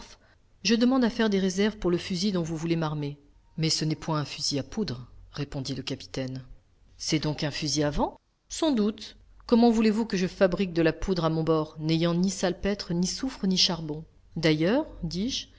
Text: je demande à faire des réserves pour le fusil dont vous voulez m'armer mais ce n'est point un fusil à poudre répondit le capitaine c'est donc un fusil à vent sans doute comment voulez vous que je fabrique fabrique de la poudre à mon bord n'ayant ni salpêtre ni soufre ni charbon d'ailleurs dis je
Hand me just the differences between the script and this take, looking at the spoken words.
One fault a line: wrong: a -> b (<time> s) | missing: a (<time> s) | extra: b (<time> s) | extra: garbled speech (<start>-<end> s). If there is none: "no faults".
missing: fabrique (10.7 s)